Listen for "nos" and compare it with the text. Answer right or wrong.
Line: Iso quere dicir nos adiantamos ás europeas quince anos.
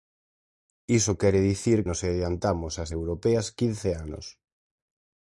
right